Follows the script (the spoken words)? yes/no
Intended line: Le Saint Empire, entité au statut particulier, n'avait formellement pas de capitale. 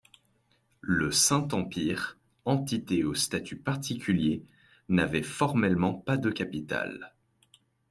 yes